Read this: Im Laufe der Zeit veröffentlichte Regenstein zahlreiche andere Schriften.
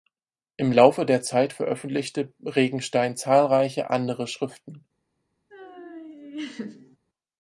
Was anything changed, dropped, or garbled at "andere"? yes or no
no